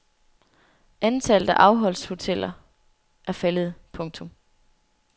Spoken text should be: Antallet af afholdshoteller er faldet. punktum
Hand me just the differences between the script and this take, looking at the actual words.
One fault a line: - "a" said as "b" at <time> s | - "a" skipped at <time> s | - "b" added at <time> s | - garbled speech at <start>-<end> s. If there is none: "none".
none